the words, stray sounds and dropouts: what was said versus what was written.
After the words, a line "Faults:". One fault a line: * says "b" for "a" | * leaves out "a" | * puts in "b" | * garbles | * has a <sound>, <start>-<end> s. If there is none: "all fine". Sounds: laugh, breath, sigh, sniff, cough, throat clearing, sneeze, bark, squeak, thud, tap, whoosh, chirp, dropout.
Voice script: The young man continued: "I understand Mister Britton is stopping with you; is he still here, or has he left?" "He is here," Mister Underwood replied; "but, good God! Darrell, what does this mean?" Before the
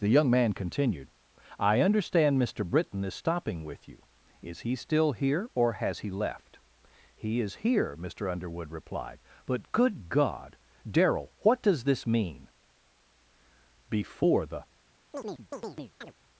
The young man continued: "I understand Mister Britton is stopping with you; is he still here, or has he left?" "He is here," Mister Underwood replied; "but, good God! Darrell, what does this mean?" Before the
Faults:
* has a chirp, 15.1-16.1 s